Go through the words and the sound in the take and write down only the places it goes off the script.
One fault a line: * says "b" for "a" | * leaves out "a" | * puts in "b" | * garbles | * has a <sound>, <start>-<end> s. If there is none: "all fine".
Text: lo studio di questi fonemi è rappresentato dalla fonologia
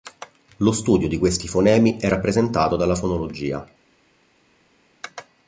all fine